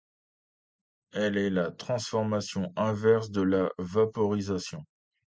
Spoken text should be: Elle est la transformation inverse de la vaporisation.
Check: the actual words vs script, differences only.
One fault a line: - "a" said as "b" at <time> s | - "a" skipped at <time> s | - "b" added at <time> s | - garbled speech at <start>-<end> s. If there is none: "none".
none